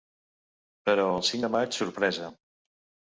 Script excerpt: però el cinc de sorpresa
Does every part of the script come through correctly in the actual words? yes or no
no